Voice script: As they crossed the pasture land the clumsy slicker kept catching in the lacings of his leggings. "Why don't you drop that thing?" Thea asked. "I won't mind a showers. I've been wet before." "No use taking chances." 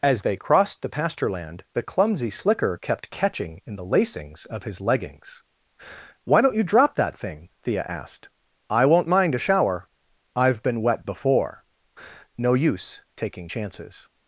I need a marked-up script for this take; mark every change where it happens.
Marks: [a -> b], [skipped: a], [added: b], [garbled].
As they crossed the pasture land the clumsy slicker kept catching in the lacings of his leggings. "Why don't you drop that thing?" Thea asked. "I won't mind a [showers. -> shower] I've been wet before." "No use taking chances."